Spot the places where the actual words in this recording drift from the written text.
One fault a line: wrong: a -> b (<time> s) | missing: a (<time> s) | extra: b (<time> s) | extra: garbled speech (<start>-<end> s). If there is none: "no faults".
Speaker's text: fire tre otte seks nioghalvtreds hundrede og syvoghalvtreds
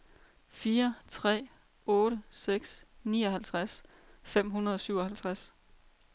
extra: fem (4.2 s)